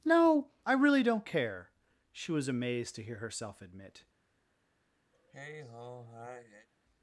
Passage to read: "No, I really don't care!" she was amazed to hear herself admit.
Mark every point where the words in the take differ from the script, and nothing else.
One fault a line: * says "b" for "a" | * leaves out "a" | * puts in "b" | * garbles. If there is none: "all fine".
all fine